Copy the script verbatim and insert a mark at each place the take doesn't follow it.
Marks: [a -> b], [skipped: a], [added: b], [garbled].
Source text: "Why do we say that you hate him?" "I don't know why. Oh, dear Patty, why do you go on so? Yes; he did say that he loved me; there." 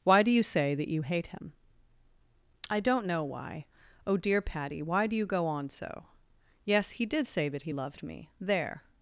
"Why do [we -> you] say that you hate him?" "I don't know why. Oh, dear Patty, why do you go on so? Yes; he did say that he loved me; there."